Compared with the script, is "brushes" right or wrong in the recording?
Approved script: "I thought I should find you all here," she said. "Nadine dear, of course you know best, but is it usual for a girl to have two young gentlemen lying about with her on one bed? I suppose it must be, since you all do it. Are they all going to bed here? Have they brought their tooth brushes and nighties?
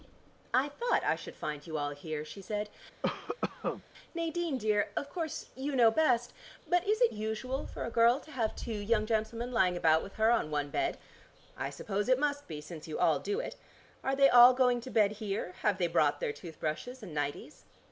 right